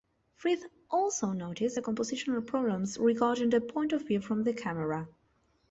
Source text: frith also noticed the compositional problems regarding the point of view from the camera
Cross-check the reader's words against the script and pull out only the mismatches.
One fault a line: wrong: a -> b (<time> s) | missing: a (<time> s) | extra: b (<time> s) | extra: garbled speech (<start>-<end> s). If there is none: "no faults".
no faults